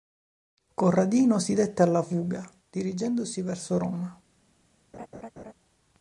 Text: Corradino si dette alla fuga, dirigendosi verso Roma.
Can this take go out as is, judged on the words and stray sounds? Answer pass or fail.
fail